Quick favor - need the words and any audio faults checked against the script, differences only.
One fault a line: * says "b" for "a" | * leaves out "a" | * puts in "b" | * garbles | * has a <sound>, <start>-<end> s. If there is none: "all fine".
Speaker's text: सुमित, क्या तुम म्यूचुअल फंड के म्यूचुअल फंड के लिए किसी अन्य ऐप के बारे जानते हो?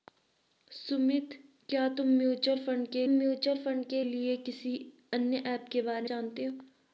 all fine